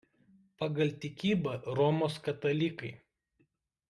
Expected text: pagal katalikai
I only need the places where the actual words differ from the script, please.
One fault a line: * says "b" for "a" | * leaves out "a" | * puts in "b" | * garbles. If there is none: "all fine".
* puts in "tikybą romos"